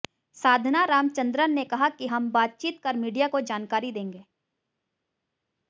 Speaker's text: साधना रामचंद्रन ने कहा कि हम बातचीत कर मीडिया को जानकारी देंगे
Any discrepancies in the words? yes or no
no